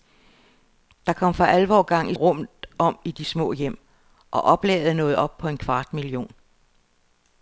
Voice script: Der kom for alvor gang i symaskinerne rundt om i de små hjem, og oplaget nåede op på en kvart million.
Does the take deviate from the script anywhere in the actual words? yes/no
yes